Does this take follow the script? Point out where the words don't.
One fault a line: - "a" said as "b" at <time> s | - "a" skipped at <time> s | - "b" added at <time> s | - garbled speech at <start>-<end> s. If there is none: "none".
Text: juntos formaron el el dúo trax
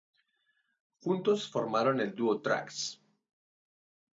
- "el" skipped at 2.1 s